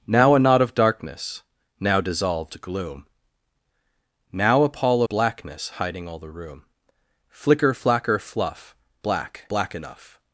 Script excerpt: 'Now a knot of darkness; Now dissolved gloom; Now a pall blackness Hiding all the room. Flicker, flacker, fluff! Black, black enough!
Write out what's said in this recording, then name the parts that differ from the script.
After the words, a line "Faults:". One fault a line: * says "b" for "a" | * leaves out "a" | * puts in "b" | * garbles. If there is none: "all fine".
'Now a knot of darkness; Now dissolved gloom; Now a pall blackness Hiding all the room. Flicker, flacker, fluff! Black, black enough!
Faults:
all fine